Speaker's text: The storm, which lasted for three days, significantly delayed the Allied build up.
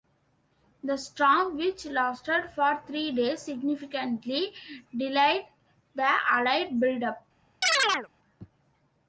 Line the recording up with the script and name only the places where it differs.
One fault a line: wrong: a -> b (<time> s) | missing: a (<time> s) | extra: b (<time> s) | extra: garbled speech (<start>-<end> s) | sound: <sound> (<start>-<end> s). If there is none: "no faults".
sound: chirp (7.6-8.1 s)